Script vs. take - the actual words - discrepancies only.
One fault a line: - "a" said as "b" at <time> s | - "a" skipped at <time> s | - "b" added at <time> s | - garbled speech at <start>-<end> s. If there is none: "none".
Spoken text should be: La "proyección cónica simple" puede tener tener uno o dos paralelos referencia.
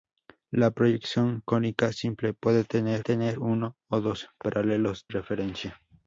none